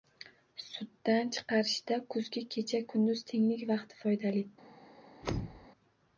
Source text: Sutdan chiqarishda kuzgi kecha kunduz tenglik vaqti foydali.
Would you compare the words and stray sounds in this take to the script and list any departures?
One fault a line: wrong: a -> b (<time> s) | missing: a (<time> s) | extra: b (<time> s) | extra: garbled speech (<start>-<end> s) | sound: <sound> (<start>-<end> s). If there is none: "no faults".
sound: thud (5.2-5.7 s)